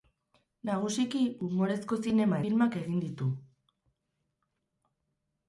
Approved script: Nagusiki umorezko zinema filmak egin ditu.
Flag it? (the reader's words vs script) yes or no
no